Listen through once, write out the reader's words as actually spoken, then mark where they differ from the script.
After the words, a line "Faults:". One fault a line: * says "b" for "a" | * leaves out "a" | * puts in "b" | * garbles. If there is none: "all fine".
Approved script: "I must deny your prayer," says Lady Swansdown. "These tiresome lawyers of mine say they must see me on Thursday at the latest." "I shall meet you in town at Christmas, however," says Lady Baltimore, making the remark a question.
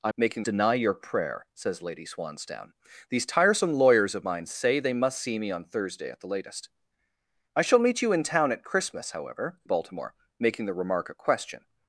"I making deny your prayer," says Lady Swansdown. "These tiresome lawyers of mine say they must see me on Thursday at the latest." "I shall meet you in town at Christmas, however," Baltimore, making the remark a question.
Faults:
* says "making" for "must"
* leaves out "says Lady"